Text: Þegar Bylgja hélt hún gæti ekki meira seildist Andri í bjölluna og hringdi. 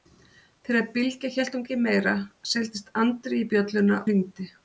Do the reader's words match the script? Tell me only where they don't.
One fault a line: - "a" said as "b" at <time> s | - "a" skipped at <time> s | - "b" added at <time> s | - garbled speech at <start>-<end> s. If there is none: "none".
- "gæti" skipped at 1.7 s
- "og" skipped at 4.0 s